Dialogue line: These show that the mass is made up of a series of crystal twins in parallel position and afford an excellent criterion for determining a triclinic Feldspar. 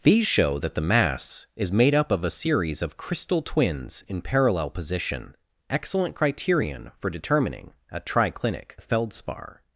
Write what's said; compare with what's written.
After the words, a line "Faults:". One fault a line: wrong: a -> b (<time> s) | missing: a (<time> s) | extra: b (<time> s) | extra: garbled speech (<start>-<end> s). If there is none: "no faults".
These show that the mass is made up of a series of crystal twins in parallel position excellent criterion for determining a triclinic Feldspar.
Faults:
missing: and afford an (5.3 s)